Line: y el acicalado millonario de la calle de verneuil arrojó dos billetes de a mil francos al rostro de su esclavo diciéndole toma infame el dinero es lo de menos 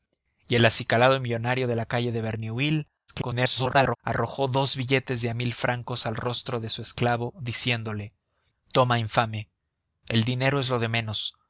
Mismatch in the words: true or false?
true